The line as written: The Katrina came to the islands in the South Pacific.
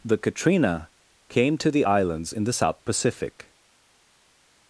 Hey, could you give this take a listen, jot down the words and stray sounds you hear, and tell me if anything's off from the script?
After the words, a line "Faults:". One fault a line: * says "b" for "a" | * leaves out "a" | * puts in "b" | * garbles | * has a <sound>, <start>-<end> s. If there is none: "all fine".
The Katrina came to the islands in the South Pacific.
Faults:
all fine